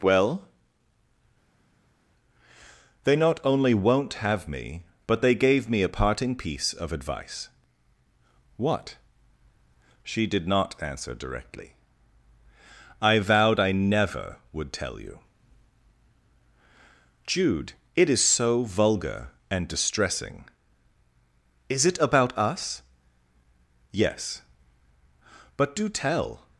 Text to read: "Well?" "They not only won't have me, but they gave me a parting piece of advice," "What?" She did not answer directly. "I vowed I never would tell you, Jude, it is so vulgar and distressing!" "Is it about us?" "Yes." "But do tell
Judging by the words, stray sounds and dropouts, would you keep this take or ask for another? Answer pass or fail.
pass